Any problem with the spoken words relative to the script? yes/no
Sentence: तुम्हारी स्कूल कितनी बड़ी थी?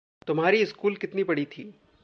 no